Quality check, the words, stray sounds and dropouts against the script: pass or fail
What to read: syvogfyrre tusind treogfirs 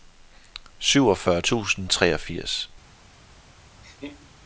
fail